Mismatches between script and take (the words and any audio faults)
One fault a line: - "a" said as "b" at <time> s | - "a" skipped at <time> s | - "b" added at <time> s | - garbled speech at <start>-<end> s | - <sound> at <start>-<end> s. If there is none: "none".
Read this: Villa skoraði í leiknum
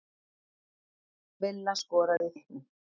- dropout at 2.2-2.2 s